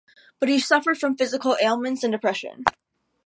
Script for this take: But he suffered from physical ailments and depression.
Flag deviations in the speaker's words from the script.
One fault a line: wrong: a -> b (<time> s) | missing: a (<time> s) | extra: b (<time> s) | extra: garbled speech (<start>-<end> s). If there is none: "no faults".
no faults